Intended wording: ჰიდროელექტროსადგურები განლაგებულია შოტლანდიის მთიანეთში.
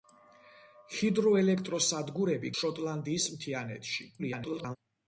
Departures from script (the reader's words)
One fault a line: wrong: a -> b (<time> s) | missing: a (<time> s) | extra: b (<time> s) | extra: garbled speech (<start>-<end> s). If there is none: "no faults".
missing: განლაგებულია (2.5 s)
extra: garbled speech (4.2-4.8 s)